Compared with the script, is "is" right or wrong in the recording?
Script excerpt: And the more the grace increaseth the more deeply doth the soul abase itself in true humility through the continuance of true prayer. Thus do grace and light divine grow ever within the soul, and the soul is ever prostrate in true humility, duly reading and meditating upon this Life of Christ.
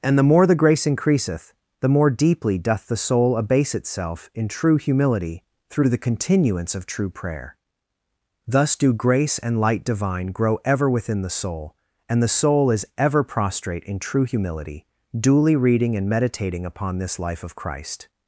right